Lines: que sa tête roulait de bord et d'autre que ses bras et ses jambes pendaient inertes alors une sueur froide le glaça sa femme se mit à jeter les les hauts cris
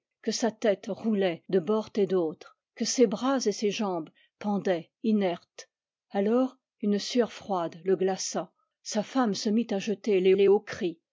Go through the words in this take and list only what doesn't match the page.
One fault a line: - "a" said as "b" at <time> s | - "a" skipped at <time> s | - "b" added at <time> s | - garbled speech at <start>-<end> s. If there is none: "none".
none